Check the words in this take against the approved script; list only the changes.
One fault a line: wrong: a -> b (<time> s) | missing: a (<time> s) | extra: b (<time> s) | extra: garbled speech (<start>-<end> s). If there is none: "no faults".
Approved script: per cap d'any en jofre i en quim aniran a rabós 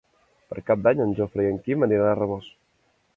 no faults